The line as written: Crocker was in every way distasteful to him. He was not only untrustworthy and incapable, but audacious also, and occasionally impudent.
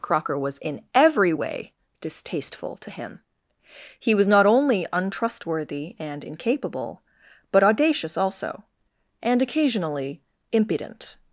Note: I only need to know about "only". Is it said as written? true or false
true